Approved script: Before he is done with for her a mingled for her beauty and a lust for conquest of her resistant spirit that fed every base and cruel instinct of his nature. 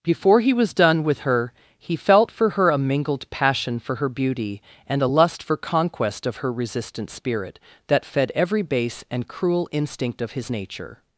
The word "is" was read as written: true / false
false